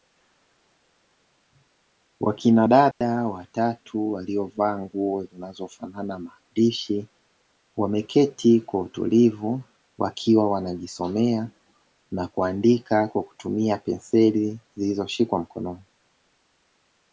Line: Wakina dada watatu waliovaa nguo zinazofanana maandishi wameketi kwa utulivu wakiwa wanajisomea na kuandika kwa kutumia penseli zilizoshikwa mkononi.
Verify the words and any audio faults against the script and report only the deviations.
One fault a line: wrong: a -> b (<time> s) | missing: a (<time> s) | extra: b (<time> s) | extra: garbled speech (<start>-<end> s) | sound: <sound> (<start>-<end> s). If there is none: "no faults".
sound: dropout (2.9-3.0 s)